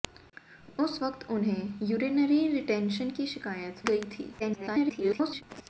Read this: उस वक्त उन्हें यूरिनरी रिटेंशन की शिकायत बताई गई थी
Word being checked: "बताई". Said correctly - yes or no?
no